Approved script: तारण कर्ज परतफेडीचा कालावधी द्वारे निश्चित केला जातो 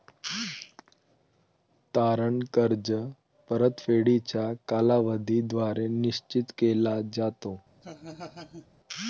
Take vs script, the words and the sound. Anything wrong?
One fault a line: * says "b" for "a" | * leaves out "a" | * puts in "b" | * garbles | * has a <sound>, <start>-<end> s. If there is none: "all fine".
* has a laugh, 7.8-8.7 s